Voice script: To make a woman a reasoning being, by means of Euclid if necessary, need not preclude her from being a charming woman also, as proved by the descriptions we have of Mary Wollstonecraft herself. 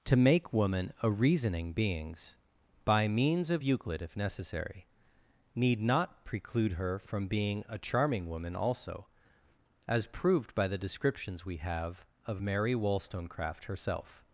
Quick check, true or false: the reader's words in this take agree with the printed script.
false